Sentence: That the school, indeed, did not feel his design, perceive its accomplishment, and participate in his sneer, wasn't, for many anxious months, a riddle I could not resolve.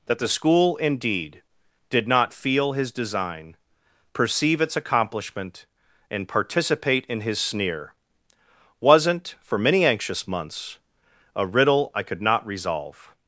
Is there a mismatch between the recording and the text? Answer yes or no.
no